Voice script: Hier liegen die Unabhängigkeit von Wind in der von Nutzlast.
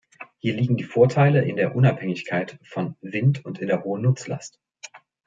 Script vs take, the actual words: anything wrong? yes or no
yes